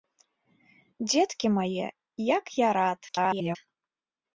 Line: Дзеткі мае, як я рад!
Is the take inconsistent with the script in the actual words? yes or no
yes